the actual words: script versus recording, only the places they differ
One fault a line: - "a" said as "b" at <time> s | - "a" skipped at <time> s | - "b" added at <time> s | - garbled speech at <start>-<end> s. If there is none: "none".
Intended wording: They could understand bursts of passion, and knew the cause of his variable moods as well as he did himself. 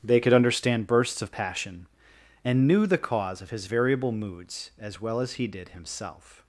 none